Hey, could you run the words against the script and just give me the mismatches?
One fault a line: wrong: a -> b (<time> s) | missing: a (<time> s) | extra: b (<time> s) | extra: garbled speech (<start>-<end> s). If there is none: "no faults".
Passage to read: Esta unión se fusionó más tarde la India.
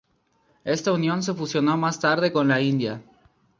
extra: con (2.3 s)